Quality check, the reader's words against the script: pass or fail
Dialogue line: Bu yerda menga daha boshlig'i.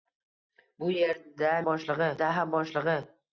fail